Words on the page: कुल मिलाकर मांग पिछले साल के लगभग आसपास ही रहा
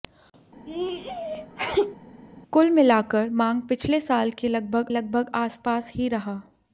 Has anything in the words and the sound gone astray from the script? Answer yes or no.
yes